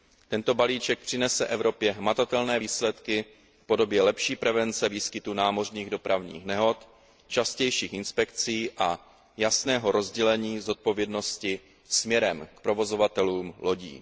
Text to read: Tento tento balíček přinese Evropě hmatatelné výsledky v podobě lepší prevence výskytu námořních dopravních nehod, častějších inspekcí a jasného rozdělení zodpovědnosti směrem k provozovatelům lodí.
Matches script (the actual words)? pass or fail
fail